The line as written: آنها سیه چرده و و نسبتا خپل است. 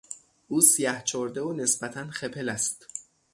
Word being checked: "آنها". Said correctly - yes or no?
no